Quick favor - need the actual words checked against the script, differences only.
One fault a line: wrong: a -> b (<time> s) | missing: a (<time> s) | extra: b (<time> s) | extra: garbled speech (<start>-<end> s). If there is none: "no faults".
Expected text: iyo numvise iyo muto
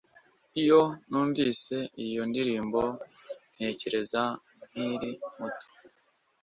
extra: ndirimbo ntekereza nkiri (2.3 s)